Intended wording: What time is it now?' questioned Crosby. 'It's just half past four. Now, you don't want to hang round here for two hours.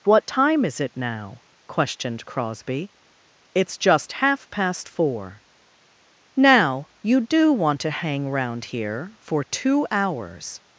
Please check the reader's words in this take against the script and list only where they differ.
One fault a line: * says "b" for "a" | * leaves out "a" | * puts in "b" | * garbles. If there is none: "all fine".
* says "do" for "don't"